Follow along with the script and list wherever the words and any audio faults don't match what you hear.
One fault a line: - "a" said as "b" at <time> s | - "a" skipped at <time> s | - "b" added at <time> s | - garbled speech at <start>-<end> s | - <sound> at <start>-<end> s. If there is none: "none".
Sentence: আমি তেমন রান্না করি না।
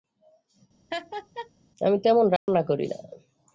- laugh at 0.9-1.5 s
- dropout at 2.4-2.5 s